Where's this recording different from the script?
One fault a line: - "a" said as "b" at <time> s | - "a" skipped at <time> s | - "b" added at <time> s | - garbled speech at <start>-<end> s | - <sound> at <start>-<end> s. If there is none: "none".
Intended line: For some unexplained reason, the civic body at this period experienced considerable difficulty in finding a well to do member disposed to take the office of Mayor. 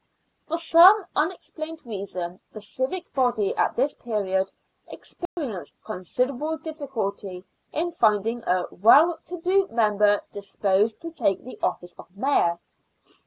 - dropout at 5.3-5.4 s